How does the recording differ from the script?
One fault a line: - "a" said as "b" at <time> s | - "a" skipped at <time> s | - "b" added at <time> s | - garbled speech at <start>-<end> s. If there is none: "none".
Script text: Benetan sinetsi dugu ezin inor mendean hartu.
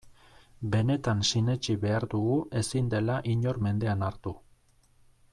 - "behar" added at 1.8 s
- "dela" added at 2.9 s